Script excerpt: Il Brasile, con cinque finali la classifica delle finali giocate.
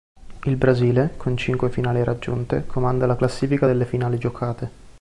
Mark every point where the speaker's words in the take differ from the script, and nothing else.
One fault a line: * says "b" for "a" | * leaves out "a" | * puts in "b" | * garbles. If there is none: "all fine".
* puts in "raggiunte comanda"